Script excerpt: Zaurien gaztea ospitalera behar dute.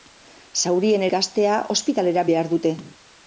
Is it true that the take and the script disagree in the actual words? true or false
false